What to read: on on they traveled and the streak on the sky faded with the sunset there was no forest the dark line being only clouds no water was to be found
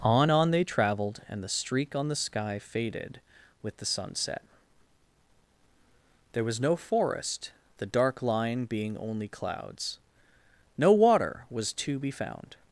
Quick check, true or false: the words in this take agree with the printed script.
true